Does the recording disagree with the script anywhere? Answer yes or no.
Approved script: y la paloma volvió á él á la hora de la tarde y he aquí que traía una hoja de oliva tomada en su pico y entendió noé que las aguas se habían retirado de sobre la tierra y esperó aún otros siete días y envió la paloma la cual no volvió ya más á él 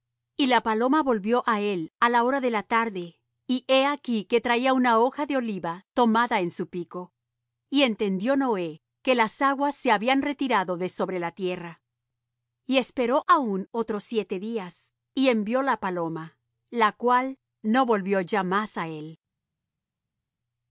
no